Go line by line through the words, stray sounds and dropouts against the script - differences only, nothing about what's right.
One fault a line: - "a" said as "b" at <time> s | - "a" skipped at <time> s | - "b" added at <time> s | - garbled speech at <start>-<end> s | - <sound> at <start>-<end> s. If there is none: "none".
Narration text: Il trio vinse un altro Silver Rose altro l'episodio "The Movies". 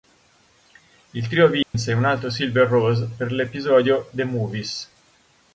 - dropout at 1.6-1.7 s
- "altro" said as "per" at 3.1 s